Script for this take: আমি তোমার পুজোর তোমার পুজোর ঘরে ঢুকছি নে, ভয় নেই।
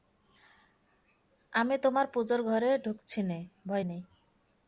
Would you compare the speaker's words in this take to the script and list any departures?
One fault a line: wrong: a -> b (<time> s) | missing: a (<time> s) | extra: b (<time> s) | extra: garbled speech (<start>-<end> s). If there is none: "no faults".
missing: তোমার পুজোর (2.4 s)